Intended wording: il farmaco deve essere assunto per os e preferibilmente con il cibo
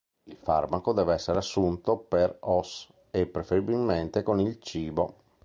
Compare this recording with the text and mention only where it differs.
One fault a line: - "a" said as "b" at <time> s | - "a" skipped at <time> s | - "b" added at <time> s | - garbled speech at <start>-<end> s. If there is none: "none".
none